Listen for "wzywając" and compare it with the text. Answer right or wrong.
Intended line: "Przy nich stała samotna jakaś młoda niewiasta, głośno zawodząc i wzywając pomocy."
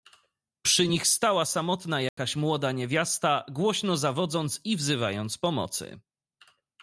right